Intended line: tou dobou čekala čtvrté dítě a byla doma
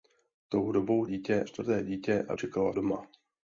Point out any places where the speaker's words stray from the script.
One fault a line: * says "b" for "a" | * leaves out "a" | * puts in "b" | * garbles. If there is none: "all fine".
* says "dítě" for "čekala"
* says "čekala" for "byla"